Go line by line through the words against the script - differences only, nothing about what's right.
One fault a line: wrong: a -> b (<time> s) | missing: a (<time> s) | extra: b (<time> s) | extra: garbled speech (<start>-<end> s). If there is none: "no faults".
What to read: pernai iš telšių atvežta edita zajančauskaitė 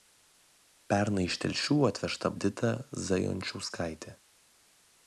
no faults